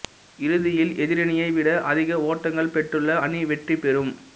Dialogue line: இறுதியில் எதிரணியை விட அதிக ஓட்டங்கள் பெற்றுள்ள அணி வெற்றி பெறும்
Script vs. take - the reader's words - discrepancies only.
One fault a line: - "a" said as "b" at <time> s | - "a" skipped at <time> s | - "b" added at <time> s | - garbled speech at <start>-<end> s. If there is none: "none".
none